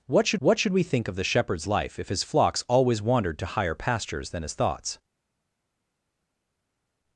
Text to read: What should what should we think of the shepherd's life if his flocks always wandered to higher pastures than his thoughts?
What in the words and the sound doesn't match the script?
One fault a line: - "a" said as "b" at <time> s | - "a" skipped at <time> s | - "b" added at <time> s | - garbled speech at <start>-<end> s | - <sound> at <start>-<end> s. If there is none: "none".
none